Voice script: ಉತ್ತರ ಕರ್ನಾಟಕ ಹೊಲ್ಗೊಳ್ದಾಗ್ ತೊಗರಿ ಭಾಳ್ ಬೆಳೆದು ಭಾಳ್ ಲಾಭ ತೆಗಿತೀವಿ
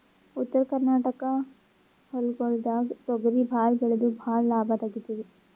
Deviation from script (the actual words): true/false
false